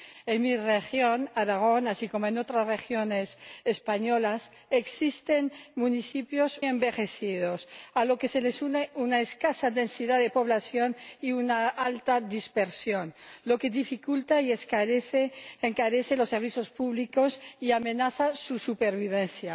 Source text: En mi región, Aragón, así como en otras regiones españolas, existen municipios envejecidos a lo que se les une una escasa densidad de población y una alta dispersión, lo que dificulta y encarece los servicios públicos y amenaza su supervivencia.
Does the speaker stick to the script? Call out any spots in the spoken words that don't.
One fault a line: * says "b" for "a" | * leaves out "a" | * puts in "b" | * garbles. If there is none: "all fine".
all fine